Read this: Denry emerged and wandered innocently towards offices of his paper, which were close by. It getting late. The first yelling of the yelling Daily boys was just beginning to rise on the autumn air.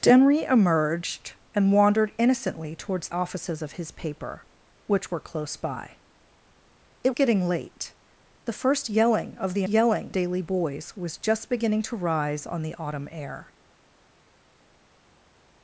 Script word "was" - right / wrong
right